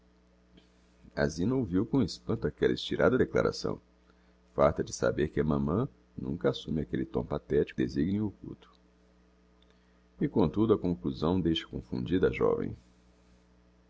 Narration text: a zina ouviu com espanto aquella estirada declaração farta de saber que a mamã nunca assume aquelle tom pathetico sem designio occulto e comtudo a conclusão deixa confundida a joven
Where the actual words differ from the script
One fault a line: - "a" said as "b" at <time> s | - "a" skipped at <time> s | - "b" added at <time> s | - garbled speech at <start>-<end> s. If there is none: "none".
- "sem" skipped at 7.8 s